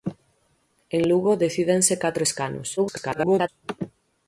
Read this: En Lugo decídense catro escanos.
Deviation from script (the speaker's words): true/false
true